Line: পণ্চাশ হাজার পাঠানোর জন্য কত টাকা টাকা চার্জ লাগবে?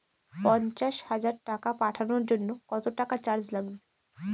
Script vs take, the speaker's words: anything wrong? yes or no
yes